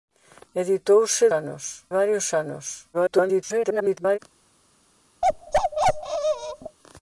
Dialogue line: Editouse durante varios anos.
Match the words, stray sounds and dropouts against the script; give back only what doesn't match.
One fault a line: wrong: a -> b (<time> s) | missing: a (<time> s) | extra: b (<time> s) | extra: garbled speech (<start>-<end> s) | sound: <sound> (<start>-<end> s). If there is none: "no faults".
wrong: durante -> anos (1.3 s)
extra: garbled speech (2.9-4.2 s)
sound: bark (5.2-6.8 s)